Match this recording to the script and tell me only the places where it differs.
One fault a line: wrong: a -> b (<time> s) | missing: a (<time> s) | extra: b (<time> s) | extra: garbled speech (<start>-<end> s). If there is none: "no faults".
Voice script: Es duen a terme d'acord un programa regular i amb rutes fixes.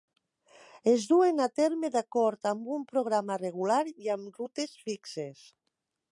extra: amb (2.5 s)